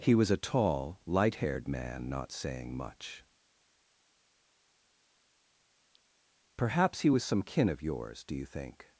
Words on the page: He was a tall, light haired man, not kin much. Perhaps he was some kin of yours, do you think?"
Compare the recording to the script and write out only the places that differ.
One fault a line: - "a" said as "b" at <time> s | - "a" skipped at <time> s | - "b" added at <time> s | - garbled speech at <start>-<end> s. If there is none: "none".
- "kin" said as "saying" at 2.3 s